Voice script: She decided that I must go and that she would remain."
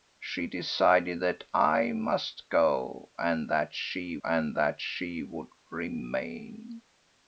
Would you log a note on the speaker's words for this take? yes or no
yes